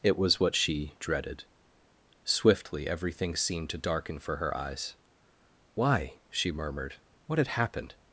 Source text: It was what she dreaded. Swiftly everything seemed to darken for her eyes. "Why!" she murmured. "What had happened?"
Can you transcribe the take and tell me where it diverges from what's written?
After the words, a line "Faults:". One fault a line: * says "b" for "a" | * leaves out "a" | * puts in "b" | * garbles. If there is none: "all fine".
It was what she dreaded. Swiftly everything seemed to darken for her eyes. "Why!" she murmured. "What had happened?"
Faults:
all fine